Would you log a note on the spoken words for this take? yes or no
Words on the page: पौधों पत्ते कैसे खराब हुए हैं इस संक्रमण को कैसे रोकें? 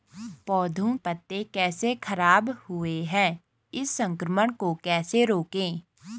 no